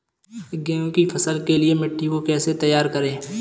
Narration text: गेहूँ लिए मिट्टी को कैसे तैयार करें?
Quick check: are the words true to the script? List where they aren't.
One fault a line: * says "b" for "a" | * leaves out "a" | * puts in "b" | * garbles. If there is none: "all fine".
* puts in "की फसल के"